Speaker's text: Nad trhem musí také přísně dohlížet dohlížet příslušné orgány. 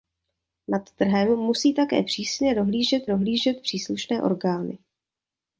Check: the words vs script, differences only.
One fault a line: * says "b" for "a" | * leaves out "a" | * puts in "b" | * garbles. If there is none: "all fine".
all fine